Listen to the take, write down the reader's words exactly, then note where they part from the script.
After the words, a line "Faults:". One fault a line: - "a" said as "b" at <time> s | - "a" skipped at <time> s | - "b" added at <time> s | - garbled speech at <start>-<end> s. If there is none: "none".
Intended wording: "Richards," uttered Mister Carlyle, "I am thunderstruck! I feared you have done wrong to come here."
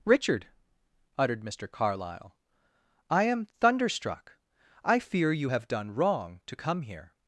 "Richard," uttered Mister Carlyle, "I am thunderstruck! I fear you have done wrong to come here."
Faults:
- "Richards" said as "Richard" at 0.0 s
- "feared" said as "fear" at 5.0 s